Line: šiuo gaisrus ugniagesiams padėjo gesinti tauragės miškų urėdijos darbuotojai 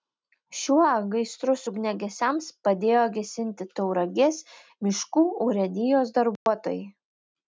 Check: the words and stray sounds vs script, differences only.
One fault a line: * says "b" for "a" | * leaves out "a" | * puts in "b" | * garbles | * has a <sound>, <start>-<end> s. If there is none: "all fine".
* has a dropout, 6.4-6.5 s